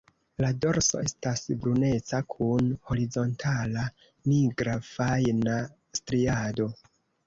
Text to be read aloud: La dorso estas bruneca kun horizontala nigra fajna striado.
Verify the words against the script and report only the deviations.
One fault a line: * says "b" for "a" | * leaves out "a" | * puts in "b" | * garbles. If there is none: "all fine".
all fine